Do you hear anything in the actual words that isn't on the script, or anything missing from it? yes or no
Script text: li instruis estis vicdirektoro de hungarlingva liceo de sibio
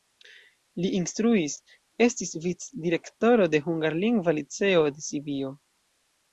no